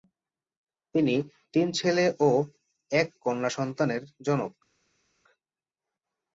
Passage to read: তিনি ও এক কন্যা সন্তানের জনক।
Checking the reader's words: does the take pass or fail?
fail